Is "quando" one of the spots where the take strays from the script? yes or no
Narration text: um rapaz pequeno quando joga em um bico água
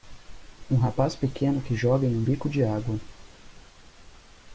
yes